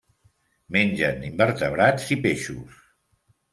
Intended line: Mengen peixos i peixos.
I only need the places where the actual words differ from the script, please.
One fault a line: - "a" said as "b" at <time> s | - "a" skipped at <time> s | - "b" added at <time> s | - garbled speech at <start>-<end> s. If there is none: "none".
- "peixos" said as "invertebrats" at 1.3 s